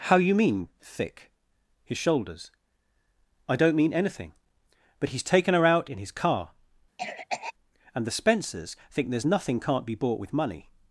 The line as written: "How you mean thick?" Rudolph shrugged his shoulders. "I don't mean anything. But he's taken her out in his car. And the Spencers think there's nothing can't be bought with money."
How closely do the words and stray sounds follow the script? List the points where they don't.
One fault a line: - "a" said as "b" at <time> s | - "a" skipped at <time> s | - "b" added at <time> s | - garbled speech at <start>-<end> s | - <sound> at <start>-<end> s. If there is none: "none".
- "Rudolph shrugged" skipped at 1.3 s
- cough at 7.0-7.5 s